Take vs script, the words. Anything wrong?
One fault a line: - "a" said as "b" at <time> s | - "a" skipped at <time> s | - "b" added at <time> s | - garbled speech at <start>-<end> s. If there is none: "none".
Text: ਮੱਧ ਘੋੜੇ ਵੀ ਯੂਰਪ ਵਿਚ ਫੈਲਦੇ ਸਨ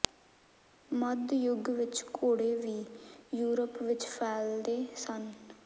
- "ਯੁੱਗ ਵਿਚ" added at 1.3 s